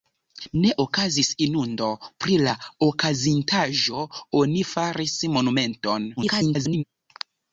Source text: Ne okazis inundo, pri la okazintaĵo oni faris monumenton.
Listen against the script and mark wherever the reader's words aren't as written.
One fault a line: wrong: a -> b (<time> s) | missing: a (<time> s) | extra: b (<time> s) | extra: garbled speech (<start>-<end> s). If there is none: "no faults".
extra: garbled speech (6.2-6.8 s)